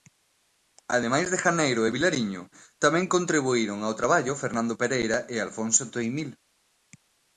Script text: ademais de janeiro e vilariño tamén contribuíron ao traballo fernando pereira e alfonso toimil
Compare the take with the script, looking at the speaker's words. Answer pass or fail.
pass